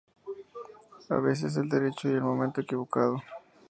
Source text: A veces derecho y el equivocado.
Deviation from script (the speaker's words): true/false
true